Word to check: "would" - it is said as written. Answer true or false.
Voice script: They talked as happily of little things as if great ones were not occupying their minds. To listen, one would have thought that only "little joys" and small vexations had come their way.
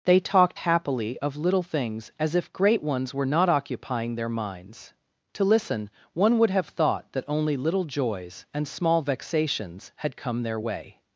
true